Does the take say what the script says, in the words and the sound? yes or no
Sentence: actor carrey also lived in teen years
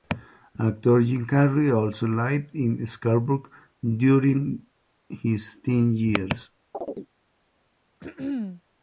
no